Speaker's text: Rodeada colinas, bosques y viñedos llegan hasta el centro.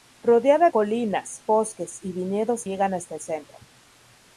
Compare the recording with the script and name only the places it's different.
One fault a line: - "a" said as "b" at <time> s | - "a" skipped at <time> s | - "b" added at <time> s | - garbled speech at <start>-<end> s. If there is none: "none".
none